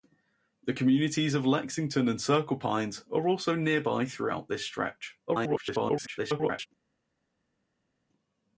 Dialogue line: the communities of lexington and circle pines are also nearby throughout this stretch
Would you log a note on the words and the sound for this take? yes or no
yes